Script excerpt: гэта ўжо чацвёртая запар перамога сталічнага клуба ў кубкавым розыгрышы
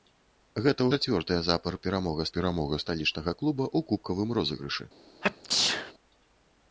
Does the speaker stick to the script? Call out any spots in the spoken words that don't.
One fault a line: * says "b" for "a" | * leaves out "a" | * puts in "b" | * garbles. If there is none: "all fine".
* leaves out "ўжо"
* puts in "перамога"